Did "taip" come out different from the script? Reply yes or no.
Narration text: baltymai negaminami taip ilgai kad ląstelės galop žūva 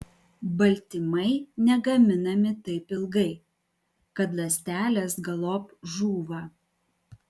no